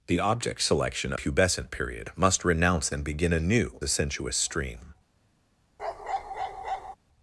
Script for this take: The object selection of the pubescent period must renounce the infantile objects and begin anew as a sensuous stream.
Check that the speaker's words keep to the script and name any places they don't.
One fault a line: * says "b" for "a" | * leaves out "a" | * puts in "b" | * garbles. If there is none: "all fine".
* leaves out "of the"
* leaves out "the infantile objects"
* leaves out "as"